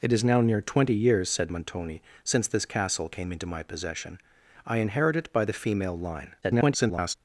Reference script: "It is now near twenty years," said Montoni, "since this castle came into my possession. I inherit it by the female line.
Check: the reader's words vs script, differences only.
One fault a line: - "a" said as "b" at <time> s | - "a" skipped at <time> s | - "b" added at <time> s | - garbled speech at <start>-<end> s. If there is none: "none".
- garbled speech at 6.4-7.1 s